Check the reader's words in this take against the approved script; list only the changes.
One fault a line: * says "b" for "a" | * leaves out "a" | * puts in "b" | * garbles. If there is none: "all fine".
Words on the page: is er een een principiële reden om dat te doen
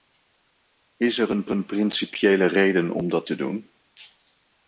all fine